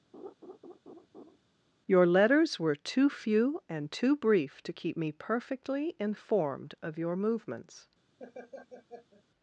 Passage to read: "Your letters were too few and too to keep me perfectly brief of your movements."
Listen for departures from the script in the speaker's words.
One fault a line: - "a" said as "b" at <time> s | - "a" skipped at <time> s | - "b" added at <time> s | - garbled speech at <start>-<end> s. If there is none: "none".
- "brief" added at 4.2 s
- "brief" said as "informed" at 6.0 s